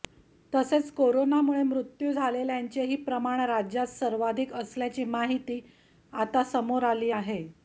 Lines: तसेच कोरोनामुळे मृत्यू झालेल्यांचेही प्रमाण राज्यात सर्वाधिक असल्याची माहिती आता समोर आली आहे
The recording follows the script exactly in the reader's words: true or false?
true